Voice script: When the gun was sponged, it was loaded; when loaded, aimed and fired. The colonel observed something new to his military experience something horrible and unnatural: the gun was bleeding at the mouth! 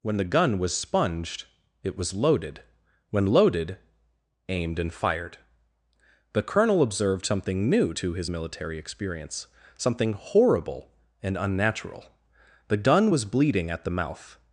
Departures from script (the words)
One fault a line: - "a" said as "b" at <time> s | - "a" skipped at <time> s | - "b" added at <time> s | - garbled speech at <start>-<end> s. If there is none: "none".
none